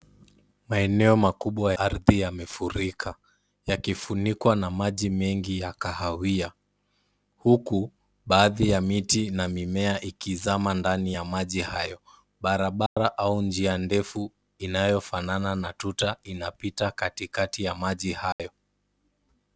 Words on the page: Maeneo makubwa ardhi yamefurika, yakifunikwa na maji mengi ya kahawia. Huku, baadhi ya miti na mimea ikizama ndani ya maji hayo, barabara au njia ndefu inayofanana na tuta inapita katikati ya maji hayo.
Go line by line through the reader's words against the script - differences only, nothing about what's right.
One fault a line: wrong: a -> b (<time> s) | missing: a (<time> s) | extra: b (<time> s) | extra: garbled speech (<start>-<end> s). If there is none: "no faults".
no faults